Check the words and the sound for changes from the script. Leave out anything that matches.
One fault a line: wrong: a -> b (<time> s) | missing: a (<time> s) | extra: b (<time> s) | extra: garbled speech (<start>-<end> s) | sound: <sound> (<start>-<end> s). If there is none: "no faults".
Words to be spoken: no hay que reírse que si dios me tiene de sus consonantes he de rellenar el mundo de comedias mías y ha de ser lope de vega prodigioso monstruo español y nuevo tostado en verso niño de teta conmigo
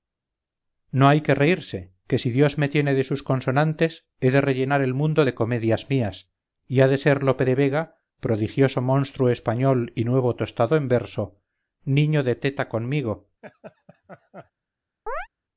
sound: laugh (13.4-14.5 s)
sound: chirp (15.1-15.3 s)